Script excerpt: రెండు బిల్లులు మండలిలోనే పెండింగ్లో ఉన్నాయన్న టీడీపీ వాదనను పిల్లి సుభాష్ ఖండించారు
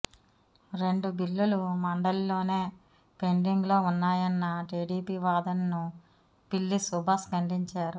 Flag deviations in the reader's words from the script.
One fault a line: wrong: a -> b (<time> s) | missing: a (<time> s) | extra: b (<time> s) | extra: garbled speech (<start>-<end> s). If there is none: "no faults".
no faults